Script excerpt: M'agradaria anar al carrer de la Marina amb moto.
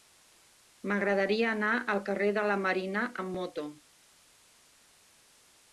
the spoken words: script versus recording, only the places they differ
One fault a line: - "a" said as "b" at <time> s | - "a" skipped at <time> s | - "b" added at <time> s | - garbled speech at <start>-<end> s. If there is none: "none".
none